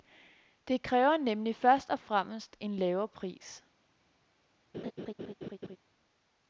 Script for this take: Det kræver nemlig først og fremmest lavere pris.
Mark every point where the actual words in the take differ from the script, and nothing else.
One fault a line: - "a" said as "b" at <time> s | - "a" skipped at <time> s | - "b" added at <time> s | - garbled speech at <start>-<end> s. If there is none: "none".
- "en" added at 2.6 s